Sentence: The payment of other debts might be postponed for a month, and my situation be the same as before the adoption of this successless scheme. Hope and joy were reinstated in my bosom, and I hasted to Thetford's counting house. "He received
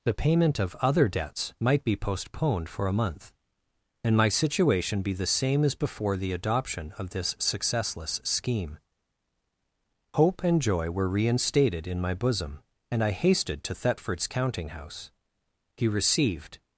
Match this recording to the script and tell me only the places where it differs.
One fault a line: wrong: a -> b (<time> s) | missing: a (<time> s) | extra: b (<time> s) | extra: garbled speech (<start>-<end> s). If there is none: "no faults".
no faults